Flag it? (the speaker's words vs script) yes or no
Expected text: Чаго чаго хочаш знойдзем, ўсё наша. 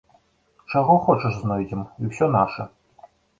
yes